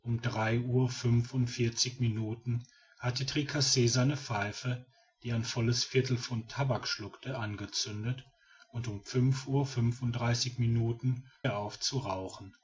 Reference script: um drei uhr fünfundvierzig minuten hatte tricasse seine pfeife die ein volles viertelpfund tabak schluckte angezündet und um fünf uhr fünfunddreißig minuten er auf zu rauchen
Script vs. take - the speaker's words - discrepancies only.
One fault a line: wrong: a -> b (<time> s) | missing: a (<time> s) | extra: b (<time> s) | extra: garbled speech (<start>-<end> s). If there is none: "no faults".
no faults